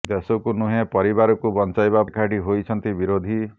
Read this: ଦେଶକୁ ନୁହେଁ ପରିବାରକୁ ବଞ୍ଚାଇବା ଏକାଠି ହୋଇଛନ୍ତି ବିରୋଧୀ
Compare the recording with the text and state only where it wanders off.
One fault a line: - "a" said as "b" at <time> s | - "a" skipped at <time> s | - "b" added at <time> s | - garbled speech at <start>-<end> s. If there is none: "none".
none